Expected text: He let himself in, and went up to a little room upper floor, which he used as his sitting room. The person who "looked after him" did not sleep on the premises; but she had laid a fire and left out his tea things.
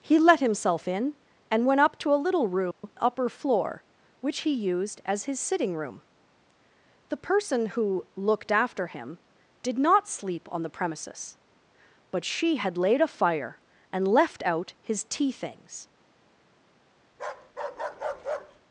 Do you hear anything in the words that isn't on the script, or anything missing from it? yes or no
no